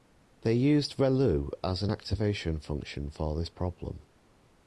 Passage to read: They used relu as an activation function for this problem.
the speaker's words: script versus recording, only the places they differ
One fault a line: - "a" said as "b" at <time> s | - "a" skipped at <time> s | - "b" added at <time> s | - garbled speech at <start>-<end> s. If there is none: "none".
none